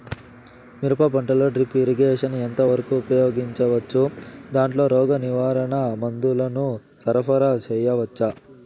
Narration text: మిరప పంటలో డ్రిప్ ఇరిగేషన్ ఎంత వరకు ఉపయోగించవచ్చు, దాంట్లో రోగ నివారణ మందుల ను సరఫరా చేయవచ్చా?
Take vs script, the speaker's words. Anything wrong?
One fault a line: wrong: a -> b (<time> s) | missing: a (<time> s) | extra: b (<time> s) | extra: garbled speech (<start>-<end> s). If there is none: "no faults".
no faults